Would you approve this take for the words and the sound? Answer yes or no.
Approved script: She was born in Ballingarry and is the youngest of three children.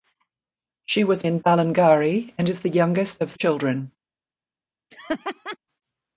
no